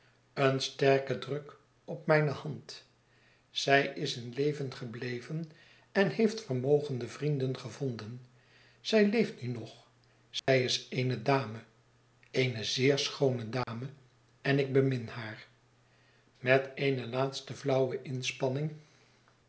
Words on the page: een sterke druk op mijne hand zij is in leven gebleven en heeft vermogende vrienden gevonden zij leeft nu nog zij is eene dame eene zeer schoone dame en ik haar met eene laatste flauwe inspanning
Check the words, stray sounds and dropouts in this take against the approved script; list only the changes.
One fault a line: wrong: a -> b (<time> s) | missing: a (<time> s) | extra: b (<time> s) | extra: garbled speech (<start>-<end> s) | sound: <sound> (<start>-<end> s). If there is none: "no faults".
sound: dropout (10.4-10.5 s)
sound: dropout (13.6-13.7 s)
extra: bemin (14.7 s)